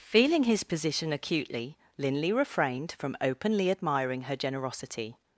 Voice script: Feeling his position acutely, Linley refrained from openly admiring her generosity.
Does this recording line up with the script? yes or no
yes